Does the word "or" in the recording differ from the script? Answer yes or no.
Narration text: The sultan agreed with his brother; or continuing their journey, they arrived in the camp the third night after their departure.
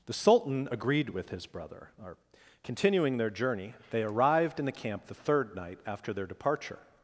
no